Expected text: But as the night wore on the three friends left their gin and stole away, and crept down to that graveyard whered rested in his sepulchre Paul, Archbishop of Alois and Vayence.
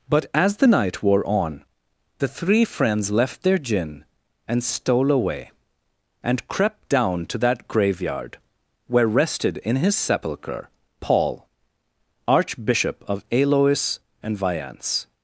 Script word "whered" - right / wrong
wrong